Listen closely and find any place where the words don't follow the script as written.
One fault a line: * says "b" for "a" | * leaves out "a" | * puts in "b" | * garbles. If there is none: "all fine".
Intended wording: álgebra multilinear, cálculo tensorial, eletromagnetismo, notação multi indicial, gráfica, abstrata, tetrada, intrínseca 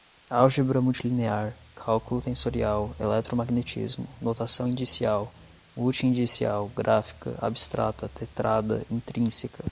* puts in "indicial"